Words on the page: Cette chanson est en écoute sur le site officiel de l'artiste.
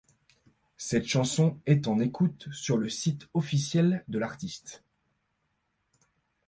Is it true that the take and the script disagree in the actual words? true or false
false